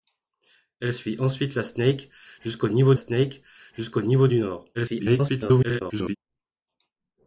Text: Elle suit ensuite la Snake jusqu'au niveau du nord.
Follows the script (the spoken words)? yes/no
no